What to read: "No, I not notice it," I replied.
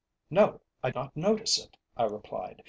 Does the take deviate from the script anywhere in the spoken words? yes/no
no